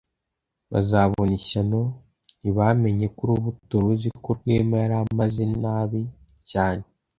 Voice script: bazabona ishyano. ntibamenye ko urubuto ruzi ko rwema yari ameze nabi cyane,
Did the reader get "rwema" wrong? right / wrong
right